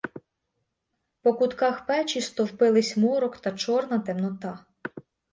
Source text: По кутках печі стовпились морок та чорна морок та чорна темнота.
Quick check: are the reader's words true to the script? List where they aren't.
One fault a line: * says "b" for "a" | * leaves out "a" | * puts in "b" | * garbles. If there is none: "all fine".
* leaves out "морок та чорна"